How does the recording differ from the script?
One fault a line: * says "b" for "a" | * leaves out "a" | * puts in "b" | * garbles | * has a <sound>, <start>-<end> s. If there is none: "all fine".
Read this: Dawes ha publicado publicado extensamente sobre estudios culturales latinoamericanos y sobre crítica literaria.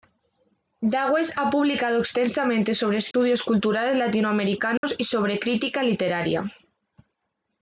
* leaves out "publicado"
* has a dropout, 3.1-3.1 s
* has a dropout, 4.8-4.8 s